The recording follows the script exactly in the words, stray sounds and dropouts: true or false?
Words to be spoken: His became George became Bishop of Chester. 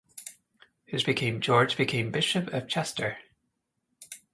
true